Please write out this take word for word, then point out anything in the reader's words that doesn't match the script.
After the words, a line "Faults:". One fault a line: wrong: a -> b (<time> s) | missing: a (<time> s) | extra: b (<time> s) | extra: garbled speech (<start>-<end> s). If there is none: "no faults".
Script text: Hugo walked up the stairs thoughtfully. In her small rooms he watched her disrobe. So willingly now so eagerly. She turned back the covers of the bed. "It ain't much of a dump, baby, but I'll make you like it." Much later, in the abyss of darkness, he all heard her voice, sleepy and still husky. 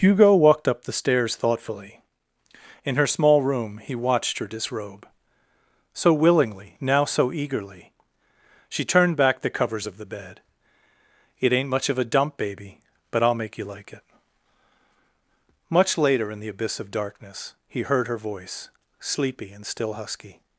Hugo walked up the stairs thoughtfully. In her small room he watched her disrobe. So willingly now so eagerly. She turned back the covers of the bed. "It ain't much of a dump, baby, but I'll make you like it." Much later, in the abyss of darkness, he heard her voice, sleepy and still husky.
Faults:
wrong: rooms -> room (3.4 s)
missing: all (17.8 s)